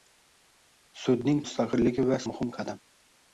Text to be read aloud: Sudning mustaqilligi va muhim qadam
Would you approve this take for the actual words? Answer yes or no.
yes